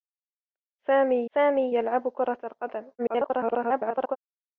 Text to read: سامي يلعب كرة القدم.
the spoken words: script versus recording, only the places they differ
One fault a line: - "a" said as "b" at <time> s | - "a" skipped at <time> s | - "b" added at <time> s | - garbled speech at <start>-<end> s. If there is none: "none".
- "سامي" added at 1.3 s
- garbled speech at 3.0-4.2 s